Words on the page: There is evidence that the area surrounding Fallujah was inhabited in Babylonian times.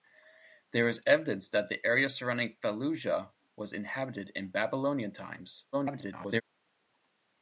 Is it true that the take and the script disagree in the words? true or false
true